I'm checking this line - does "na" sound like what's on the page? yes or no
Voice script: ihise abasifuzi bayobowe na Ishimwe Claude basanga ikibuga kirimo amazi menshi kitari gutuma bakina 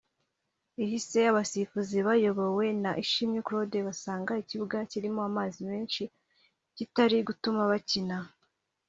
yes